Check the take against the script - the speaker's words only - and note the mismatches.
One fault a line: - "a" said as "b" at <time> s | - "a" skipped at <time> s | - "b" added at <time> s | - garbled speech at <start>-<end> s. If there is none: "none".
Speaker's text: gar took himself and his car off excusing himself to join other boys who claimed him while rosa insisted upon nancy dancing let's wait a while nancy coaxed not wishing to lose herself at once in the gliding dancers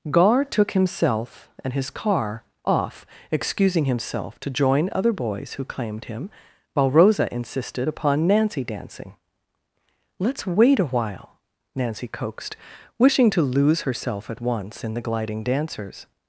- "not" skipped at 12.6 s